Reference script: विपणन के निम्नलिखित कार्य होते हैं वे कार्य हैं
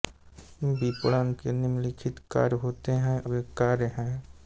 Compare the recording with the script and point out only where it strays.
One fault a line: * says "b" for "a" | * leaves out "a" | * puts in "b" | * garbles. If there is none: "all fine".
all fine